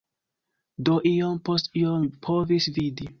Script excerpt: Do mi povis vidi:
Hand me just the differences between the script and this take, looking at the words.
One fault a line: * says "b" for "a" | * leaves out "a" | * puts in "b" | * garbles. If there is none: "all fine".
* puts in "iom post iom"